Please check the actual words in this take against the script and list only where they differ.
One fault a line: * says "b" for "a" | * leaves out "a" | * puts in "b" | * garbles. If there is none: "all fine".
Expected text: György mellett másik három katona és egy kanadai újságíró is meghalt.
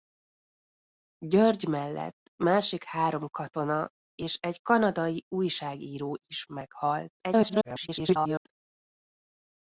* garbles